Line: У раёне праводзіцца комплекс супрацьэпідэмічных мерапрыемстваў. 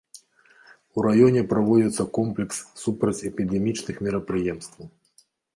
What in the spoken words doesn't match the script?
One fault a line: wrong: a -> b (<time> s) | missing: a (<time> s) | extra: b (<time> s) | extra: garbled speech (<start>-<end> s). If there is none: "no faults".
no faults